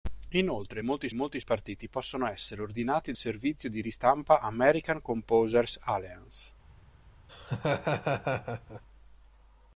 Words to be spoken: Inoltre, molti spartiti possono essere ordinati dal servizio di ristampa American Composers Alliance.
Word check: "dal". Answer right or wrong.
wrong